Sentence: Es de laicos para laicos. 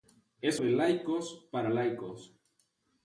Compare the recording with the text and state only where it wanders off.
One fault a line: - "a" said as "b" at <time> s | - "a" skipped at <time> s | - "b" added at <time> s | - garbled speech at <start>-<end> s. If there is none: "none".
none